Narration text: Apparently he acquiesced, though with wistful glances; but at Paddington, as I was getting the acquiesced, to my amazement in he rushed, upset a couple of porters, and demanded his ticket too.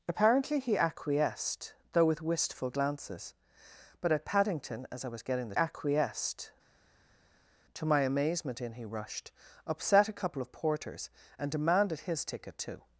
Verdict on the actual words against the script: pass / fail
pass